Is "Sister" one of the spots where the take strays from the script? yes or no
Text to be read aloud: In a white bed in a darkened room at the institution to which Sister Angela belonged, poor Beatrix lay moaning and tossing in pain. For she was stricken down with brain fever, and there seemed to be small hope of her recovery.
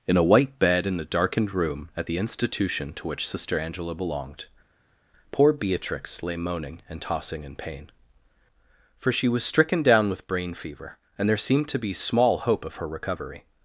no